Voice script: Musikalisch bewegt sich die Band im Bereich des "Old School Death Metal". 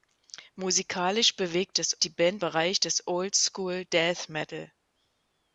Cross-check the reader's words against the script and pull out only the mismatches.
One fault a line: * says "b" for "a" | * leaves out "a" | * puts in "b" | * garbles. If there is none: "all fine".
* says "des" for "sich"
* leaves out "im"